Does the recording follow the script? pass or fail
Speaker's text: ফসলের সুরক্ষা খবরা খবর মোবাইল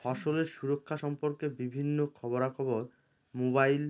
fail